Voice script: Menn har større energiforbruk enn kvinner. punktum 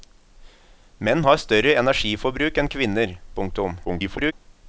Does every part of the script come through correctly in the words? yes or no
no